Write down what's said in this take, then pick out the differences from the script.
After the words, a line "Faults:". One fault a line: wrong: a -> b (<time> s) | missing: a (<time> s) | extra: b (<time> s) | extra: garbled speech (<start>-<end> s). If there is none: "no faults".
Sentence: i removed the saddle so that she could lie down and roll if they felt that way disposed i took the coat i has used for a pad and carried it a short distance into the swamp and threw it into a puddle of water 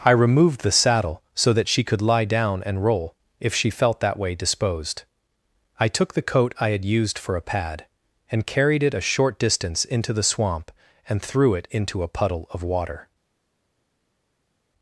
i removed the saddle so that she could lie down and roll if she felt that way disposed i took the coat i had used for a pad and carried it a short distance into the swamp and threw it into a puddle of water
Faults:
wrong: they -> she (3.5 s)
wrong: has -> had (6.7 s)